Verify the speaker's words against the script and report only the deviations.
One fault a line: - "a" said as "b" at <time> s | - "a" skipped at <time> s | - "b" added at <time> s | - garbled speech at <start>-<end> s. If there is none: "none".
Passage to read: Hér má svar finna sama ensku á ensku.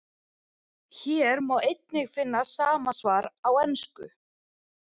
- "svar" said as "einnig" at 1.7 s
- "ensku" said as "svar" at 3.0 s